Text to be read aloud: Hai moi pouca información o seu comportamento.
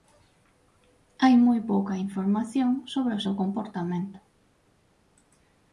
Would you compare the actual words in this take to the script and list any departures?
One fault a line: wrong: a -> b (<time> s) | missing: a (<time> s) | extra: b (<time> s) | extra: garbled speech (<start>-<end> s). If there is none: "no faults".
extra: sobre (2.9 s)